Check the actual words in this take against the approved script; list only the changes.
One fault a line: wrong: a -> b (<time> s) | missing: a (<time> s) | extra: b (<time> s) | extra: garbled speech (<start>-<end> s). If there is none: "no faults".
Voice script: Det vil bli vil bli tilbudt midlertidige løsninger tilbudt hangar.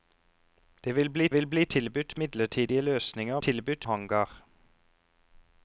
no faults